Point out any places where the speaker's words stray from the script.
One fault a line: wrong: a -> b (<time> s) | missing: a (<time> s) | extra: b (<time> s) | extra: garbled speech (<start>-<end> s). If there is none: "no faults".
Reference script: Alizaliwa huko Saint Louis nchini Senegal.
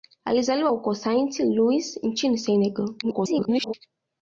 extra: garbled speech (3.0-3.7 s)